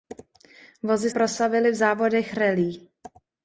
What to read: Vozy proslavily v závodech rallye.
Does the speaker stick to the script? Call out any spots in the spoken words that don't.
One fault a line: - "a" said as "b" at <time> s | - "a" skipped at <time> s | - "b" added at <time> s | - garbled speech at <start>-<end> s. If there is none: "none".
none